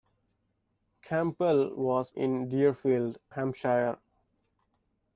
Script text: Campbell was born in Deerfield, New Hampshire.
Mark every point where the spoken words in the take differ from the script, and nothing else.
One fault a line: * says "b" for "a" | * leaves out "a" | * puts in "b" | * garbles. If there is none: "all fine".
* leaves out "born"
* leaves out "New"